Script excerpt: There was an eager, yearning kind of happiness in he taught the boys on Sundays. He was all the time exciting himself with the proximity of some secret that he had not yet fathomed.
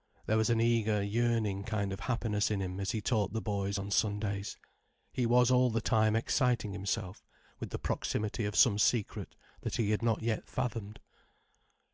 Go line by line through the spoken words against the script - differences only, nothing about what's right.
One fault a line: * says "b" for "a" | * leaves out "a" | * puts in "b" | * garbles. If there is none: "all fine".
* puts in "him as"